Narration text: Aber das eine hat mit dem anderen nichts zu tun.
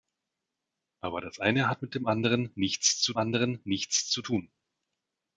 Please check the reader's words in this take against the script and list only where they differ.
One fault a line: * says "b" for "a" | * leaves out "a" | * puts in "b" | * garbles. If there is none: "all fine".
* puts in "anderen nichts zu"